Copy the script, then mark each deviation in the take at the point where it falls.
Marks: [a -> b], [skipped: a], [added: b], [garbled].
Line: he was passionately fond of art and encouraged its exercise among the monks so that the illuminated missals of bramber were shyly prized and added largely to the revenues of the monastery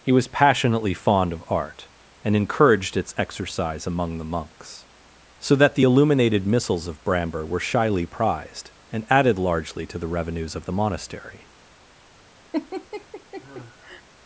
he was passionately fond of art and encouraged its exercise among the monks so that the illuminated missals of bramber were shyly prized and added largely to the revenues of the monastery